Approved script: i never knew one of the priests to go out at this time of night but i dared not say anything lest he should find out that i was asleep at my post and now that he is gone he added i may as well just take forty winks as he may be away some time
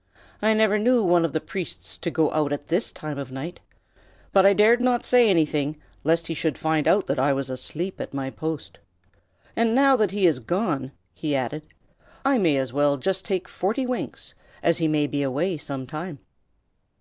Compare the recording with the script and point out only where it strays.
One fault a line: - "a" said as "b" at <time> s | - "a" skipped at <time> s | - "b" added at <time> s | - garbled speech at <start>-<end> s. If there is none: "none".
none